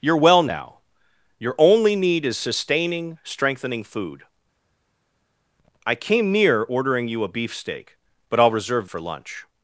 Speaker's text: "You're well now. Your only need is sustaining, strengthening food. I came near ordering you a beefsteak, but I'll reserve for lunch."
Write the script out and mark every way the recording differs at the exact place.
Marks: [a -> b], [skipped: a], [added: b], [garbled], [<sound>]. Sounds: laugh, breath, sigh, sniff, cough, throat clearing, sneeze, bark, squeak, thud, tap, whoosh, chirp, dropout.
"You're well now. Your only need is sustaining, strengthening food. I came near ordering you a beefsteak, but I'll reserve for lunch."